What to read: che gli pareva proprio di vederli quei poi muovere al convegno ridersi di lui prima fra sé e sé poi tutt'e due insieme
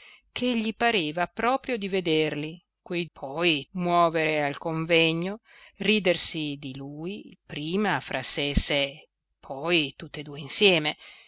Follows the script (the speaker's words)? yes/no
yes